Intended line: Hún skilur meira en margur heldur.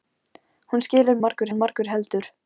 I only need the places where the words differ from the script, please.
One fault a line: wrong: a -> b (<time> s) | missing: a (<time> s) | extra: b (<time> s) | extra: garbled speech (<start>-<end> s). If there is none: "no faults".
wrong: meira -> margur (1.2 s)